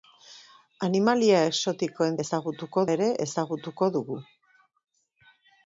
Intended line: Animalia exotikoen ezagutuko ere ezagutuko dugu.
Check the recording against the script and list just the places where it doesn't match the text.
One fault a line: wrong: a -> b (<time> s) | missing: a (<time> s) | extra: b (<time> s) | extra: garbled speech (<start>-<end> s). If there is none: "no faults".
no faults